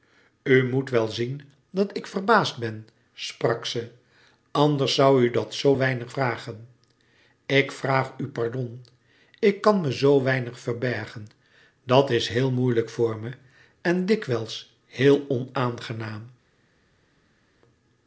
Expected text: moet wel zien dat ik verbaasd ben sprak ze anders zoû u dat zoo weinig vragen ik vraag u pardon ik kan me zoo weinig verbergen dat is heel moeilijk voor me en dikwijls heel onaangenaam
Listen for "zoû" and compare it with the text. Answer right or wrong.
right